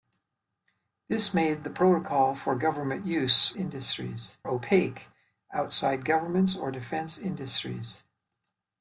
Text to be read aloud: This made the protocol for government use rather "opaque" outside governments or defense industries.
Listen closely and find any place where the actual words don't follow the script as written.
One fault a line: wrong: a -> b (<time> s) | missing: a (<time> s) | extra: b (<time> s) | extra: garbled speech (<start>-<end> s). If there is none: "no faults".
wrong: rather -> industries (3.5 s)